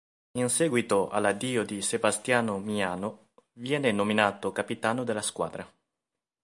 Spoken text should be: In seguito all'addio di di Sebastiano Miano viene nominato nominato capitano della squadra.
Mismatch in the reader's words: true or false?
true